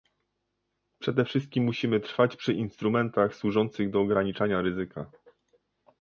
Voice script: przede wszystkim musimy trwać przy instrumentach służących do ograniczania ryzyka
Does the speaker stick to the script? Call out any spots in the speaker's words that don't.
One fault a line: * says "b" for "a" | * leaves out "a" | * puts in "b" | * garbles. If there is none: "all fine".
all fine